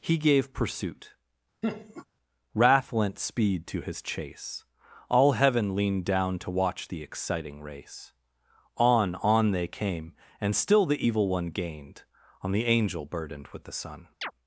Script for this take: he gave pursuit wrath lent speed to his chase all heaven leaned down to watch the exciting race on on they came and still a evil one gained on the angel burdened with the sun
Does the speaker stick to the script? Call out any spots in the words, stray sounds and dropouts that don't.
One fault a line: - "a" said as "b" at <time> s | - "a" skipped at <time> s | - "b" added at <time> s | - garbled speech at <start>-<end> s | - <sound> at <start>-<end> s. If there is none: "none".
- laugh at 1.6-2.1 s
- "a" said as "the" at 10.9 s
- chirp at 14.2-14.3 s